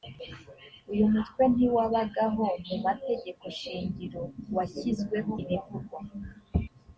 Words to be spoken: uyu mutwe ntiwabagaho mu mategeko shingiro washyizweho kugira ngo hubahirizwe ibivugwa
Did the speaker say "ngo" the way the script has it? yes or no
no